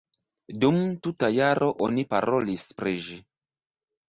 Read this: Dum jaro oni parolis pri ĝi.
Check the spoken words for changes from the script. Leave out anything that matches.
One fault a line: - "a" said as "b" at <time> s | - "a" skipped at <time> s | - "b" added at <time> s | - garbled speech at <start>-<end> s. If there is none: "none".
- "tuta" added at 1.1 s